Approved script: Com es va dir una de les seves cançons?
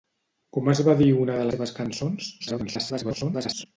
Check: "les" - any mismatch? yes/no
yes